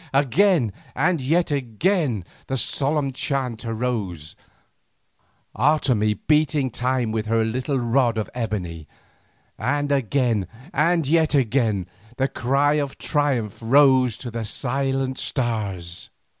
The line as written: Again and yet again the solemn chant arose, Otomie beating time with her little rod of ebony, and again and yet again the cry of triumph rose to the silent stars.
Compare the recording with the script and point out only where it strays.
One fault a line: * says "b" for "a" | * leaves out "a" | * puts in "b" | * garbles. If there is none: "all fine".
all fine